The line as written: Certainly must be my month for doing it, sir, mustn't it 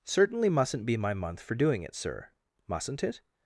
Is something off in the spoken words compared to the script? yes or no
yes